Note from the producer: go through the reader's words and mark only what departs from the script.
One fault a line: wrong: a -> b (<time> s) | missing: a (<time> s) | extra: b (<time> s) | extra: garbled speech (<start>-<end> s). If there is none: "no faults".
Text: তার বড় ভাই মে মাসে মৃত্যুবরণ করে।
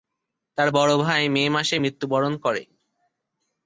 no faults